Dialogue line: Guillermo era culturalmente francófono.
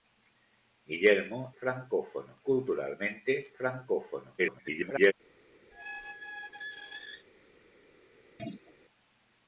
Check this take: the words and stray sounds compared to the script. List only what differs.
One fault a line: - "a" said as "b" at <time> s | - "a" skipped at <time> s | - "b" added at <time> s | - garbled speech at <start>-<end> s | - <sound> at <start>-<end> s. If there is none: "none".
- "era" said as "francófono" at 1.6 s
- garbled speech at 4.4-5.1 s
- squeak at 5.7-7.3 s
- throat clearing at 8.4-8.7 s